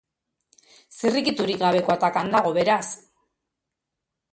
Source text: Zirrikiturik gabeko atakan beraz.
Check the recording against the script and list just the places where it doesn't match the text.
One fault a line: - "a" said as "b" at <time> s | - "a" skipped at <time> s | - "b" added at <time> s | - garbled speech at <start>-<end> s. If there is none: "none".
- "dago" added at 2.4 s